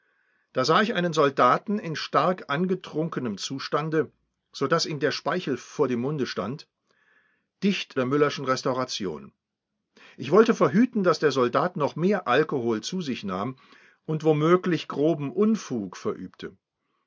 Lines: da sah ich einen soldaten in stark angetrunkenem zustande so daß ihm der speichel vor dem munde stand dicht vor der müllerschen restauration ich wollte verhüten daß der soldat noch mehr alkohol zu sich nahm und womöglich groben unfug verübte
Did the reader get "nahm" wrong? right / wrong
right